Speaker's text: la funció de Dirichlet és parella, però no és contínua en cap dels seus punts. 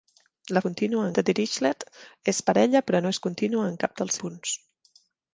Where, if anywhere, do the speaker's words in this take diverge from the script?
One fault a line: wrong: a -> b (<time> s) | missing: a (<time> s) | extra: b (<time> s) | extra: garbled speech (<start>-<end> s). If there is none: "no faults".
wrong: funció -> contínua (0.7 s)
missing: seus (4.2 s)